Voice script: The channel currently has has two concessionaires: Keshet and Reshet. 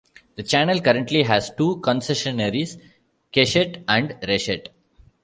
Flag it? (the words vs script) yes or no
yes